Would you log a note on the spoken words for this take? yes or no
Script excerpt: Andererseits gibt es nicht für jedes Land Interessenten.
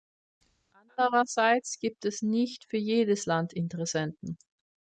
no